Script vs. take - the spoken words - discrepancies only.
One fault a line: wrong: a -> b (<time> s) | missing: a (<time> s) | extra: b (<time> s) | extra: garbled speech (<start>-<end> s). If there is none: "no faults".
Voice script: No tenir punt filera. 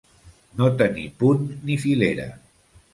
extra: ni (1.7 s)